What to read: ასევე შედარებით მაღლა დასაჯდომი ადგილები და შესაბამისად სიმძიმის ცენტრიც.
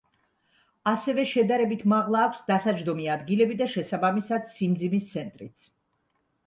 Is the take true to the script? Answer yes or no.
no